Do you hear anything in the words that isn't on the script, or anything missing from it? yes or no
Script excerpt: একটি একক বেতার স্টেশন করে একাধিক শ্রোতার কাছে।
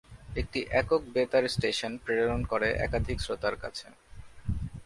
yes